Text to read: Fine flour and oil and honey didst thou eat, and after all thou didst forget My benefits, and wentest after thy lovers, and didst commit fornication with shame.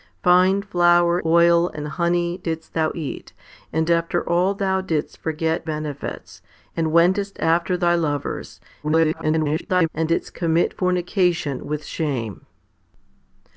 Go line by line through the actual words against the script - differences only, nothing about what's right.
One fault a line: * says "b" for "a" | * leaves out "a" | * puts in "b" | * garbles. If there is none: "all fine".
* leaves out "and"
* leaves out "My"
* garbles